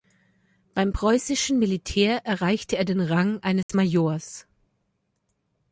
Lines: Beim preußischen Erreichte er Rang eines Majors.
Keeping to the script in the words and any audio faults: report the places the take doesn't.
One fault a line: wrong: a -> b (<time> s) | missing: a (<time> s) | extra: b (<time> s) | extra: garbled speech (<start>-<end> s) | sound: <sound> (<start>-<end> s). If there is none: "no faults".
extra: Militär (1.6 s)
extra: den (2.8 s)
sound: dropout (3.6-3.7 s)